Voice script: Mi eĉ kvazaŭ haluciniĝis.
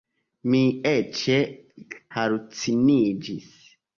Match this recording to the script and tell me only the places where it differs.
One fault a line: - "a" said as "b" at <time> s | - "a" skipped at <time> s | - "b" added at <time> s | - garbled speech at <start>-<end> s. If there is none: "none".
- "kvazaŭ" skipped at 1.2 s